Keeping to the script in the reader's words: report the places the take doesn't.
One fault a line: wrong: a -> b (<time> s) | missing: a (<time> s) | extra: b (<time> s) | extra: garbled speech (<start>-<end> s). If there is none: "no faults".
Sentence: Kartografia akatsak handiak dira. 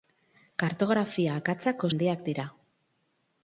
no faults